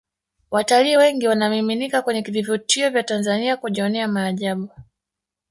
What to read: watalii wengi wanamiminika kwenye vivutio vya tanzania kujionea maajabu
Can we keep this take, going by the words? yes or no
yes